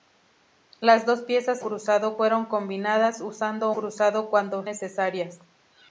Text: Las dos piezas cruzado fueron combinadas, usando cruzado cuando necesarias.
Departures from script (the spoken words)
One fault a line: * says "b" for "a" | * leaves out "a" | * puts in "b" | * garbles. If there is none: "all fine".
all fine